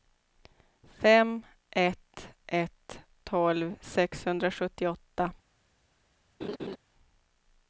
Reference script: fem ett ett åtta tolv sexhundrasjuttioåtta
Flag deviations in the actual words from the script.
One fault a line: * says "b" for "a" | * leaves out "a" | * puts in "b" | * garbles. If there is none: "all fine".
* leaves out "åtta"